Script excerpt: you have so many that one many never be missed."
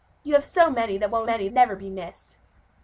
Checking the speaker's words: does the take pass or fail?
pass